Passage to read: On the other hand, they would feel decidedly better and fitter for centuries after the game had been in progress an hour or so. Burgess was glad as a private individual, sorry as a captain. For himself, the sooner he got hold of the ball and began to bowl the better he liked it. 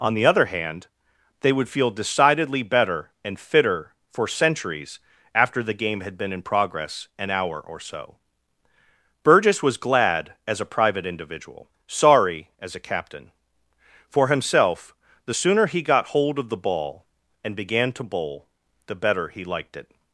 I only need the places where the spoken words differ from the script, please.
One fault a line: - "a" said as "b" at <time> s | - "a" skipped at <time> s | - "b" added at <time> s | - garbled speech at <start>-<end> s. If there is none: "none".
none